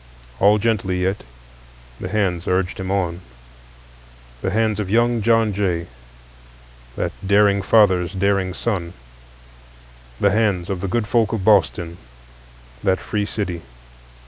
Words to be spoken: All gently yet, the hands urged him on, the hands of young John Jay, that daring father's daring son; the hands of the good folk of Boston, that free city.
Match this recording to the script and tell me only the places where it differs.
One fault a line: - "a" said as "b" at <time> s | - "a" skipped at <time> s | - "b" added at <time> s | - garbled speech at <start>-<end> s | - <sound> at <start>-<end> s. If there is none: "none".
none